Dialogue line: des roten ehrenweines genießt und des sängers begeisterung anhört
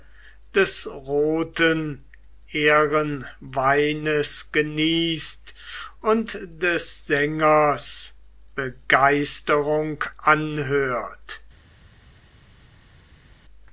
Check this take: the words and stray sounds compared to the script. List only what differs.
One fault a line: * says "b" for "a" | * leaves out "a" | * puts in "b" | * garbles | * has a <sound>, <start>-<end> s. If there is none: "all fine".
all fine